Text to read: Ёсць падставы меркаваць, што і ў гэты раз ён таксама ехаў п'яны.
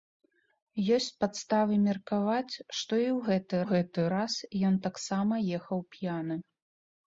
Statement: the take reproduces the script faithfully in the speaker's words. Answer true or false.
false